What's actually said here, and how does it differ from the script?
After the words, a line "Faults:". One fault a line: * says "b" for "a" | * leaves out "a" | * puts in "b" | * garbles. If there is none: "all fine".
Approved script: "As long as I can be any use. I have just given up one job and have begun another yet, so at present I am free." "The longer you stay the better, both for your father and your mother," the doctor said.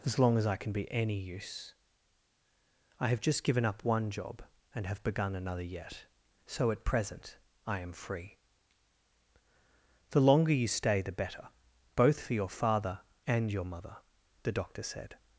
"As long as I can be any use. I have just given up one job and have begun another yet, so at present I am free." "The longer you stay the better, both for your father and your mother," the doctor said.
Faults:
all fine